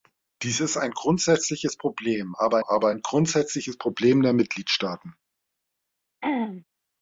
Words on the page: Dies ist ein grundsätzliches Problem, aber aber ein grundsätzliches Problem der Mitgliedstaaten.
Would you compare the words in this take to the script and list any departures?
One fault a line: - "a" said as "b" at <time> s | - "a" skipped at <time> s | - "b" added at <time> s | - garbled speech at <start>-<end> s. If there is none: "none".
none